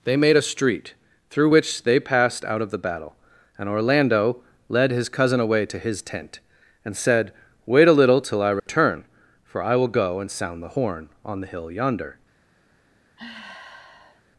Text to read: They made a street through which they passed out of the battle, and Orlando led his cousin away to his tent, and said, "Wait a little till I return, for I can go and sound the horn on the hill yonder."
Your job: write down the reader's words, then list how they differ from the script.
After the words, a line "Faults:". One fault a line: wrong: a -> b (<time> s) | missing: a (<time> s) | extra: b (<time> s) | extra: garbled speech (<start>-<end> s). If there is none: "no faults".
They made a street through which they passed out of the battle, and Orlando led his cousin away to his tent, and said, "Wait a little till I return, for I will go and sound the horn on the hill yonder."
Faults:
wrong: can -> will (9.8 s)